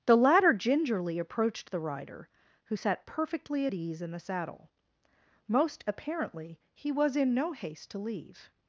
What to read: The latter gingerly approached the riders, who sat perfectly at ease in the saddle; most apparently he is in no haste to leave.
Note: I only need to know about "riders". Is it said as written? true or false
false